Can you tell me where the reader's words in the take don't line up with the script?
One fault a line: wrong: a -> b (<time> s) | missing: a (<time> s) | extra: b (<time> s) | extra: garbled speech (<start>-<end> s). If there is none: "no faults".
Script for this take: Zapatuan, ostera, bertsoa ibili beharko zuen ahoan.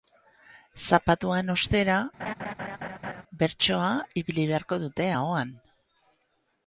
wrong: zuen -> dute (4.9 s)